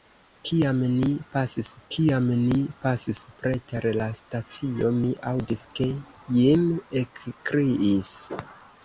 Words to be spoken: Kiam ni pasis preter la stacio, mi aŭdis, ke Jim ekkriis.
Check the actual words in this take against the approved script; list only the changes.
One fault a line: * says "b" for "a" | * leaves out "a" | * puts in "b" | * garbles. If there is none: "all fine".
* puts in "kiam ni pasis"